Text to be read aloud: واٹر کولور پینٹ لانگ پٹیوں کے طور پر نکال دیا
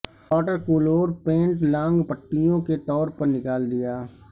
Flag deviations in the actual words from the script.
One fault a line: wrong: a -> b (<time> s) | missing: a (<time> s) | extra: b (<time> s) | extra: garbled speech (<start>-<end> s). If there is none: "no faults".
no faults